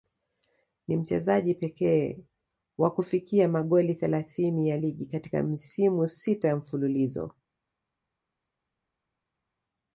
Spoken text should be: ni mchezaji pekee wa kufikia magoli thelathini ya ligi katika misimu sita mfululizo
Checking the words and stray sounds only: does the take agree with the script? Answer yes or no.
yes